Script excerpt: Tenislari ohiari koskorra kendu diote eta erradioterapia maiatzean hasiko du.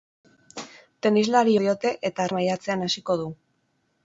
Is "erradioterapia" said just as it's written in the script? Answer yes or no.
no